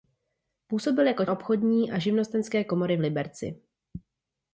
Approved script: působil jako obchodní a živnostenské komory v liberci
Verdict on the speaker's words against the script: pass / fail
pass